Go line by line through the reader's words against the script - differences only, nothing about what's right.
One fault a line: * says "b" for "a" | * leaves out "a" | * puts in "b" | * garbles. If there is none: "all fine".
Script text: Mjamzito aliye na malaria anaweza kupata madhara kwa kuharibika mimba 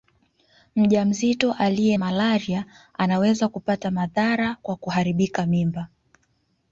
* leaves out "na"